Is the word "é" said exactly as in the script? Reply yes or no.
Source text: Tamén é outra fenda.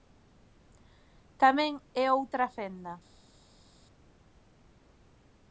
yes